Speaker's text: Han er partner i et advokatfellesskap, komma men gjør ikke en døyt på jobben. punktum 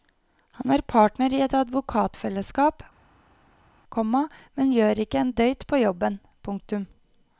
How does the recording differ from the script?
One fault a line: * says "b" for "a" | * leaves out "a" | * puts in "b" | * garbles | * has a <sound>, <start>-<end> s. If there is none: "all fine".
all fine